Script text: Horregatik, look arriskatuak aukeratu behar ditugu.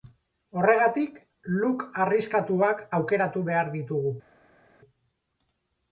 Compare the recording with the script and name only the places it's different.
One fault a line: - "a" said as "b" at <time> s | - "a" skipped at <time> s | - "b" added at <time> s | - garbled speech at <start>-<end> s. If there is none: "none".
none